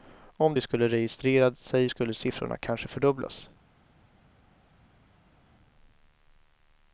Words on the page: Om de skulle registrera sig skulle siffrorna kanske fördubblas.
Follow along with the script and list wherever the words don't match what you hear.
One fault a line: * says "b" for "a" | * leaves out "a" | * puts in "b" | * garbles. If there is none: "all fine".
all fine